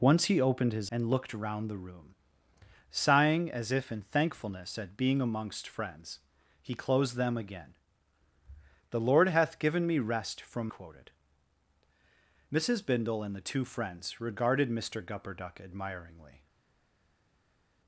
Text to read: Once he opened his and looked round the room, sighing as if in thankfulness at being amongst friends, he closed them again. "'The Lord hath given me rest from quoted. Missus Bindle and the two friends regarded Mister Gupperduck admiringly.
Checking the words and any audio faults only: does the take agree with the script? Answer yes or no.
yes